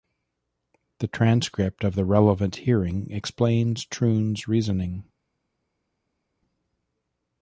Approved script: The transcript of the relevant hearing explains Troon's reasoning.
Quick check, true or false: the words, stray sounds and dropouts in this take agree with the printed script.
true